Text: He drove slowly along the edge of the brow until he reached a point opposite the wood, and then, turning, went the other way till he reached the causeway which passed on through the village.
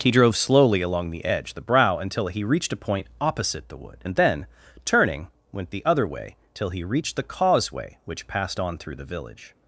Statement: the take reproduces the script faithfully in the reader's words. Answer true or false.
false